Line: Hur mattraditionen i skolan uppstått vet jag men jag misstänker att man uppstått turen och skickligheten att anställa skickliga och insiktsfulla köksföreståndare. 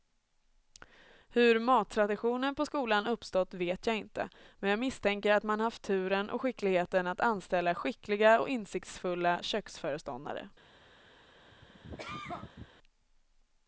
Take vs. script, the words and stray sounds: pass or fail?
fail